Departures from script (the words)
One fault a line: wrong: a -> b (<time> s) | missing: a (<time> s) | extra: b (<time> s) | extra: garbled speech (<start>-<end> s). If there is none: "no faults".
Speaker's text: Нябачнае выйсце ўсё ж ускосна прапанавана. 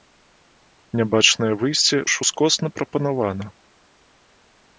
missing: ўсё (2.0 s)